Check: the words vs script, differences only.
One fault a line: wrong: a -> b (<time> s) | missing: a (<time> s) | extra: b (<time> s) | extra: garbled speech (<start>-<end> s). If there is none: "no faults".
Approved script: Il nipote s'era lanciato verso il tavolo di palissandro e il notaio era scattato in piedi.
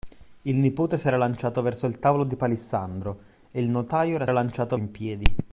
wrong: scattato -> lanciato (4.3 s)